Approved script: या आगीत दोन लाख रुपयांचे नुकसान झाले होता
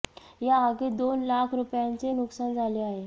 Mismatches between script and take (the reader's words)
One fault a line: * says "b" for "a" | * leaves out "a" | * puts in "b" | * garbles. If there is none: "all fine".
* says "आहे" for "होता"